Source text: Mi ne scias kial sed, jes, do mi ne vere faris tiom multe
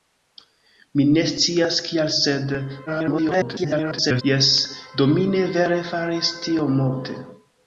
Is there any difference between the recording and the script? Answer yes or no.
yes